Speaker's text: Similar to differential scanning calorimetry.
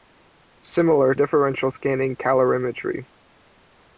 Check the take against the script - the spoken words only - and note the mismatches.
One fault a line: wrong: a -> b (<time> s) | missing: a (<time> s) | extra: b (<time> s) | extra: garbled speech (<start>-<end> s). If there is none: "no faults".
missing: to (1.1 s)